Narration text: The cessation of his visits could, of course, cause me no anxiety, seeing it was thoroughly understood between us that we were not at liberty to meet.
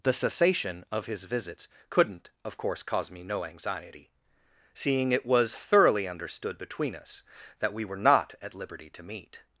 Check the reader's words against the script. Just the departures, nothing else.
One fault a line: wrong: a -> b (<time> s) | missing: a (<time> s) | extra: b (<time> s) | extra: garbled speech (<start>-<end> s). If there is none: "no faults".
wrong: could -> couldn't (1.9 s)